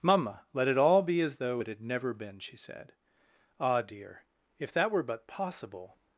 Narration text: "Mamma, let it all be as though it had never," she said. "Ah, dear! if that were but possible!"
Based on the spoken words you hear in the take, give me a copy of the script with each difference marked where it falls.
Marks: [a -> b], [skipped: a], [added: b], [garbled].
"Mamma, let it all be as though it had never," [added: been] she said. "Ah, dear! if that were but possible!"